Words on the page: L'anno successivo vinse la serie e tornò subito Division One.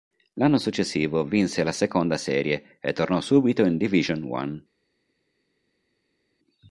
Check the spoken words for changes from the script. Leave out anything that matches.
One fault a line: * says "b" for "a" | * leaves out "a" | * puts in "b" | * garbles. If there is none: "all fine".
* puts in "seconda"
* puts in "in"